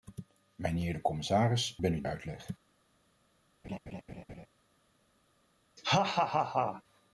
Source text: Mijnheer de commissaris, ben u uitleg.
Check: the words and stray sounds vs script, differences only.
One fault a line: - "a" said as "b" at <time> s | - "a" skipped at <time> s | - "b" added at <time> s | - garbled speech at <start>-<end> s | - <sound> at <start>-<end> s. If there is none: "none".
- laugh at 3.6-4.5 s
- laugh at 5.8-6.8 s